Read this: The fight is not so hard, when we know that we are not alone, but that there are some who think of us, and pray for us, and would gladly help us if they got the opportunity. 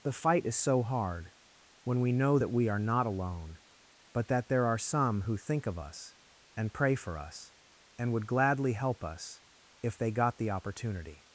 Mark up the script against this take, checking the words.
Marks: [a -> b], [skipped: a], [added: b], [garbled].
The fight is [skipped: not] so hard, when we know that we are not alone, but that there are some who think of us, and pray for us, and would gladly help us if they got the opportunity.